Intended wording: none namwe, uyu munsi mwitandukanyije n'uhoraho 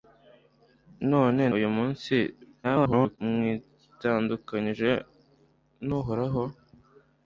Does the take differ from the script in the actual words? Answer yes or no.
yes